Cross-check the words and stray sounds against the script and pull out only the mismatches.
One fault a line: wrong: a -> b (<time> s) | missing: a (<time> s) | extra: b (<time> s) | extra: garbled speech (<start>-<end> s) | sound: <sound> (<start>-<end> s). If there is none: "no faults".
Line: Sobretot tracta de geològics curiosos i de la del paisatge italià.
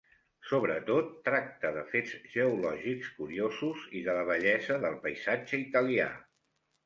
extra: fets (1.9 s)
extra: bellesa (4.3 s)